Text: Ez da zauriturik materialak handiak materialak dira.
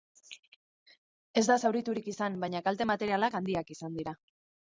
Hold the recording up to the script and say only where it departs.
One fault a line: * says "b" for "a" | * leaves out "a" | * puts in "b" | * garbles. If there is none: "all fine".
* puts in "izan baina kalte"
* says "izan" for "materialak"